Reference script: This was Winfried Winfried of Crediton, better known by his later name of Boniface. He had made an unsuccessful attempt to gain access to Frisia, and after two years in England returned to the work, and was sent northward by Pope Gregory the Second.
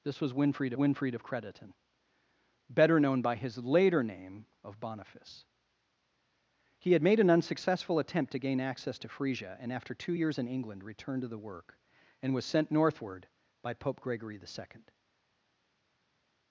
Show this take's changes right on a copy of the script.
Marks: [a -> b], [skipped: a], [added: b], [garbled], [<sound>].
This was Winfried Winfried of Crediton, better known by his later name of Boniface. He had made an unsuccessful attempt to gain access to Frisia, and after two years in England returned to the work, and was sent northward by Pope Gregory the Second.